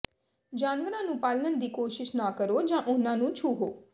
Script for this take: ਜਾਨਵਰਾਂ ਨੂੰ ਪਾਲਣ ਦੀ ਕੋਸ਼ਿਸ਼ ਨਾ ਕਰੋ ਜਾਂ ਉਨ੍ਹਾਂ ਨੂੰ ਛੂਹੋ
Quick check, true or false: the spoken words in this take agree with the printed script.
true